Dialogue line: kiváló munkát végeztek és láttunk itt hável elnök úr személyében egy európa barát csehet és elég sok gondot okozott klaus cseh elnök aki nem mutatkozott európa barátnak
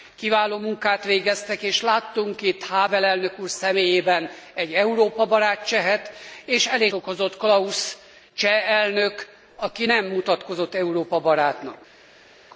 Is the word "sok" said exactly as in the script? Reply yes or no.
no